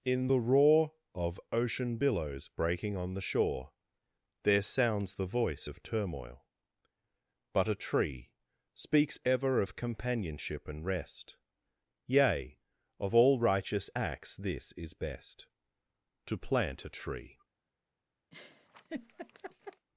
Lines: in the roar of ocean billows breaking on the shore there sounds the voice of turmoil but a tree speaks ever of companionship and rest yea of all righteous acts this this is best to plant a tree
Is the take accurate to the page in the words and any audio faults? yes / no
no